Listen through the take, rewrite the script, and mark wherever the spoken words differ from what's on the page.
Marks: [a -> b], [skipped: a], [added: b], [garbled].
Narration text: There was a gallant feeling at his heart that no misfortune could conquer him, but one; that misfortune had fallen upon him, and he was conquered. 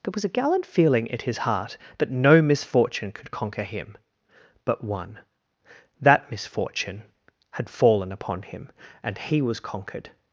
There was a gallant feeling at his heart that no misfortune could conquer him, but one; that misfortune had fallen upon him, and he was conquered.